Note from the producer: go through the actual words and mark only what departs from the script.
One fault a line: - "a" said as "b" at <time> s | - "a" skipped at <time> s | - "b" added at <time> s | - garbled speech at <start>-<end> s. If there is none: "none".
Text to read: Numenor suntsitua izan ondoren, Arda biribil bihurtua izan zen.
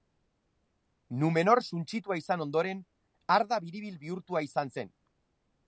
none